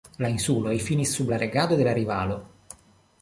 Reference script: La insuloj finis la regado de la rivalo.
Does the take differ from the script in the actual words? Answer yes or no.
yes